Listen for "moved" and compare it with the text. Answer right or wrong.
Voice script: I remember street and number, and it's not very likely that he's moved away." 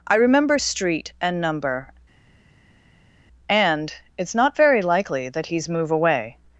wrong